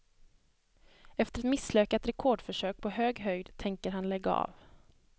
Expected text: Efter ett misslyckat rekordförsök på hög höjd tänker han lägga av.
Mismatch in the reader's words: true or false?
false